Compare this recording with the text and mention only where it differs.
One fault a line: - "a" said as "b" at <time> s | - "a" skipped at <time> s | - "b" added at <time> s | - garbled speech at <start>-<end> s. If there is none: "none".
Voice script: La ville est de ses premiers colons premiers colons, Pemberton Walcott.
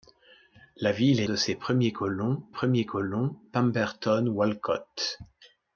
none